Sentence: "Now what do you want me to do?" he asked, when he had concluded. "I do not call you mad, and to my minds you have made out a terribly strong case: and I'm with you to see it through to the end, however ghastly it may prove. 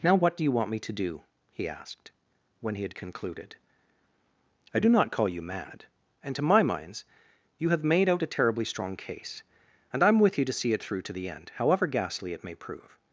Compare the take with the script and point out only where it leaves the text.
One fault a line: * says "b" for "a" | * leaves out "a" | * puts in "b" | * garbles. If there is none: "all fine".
all fine